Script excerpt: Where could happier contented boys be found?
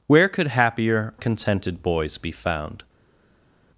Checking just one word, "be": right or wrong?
right